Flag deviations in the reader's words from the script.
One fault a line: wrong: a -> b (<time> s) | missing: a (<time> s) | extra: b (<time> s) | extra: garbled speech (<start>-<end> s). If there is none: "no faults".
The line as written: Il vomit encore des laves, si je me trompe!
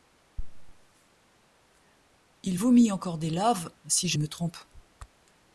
no faults